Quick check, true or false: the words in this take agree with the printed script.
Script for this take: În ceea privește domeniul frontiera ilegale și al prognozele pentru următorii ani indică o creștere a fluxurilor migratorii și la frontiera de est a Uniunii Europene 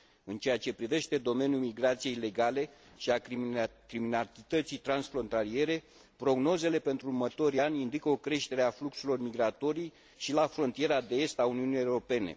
false